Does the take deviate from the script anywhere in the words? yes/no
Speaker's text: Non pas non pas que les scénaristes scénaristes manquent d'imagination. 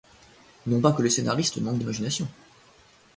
yes